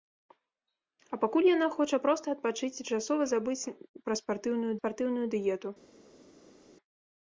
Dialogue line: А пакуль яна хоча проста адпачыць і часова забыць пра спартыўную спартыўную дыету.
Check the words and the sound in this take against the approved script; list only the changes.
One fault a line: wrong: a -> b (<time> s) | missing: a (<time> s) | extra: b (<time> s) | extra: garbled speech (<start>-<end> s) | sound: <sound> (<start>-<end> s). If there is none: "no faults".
no faults